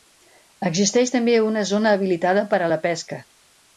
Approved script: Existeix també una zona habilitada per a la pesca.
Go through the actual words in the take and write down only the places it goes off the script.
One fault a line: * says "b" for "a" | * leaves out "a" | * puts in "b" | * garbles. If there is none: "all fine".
all fine